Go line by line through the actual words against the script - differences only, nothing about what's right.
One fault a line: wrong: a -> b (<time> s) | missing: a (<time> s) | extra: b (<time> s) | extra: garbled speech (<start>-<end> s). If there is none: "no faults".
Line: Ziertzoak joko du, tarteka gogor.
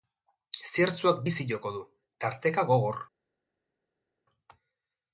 extra: bizi (1.2 s)